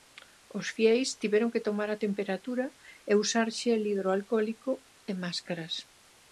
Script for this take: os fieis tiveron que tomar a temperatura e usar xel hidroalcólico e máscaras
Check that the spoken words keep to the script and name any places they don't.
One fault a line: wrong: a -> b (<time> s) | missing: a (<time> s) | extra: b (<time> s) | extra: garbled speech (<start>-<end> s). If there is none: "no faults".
no faults